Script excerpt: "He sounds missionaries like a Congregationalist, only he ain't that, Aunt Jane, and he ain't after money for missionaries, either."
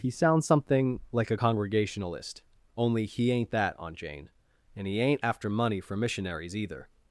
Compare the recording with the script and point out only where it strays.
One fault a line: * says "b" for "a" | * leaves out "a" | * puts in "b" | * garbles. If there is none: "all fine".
* says "something" for "missionaries"